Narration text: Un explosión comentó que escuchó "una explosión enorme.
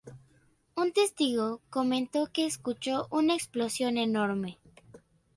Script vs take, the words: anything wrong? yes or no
yes